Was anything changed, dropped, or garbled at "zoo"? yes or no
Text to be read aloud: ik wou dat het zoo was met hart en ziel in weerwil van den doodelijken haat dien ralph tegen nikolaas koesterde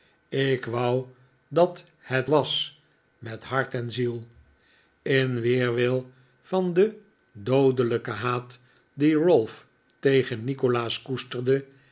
yes